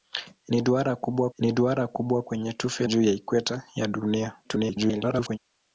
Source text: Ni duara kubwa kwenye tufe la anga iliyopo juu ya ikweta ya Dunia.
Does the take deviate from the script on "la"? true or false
true